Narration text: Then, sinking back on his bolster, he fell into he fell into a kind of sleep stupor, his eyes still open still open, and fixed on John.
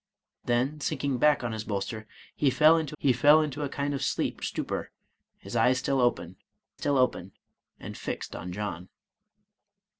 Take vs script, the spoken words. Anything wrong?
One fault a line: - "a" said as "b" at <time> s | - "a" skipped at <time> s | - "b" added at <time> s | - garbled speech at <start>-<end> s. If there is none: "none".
none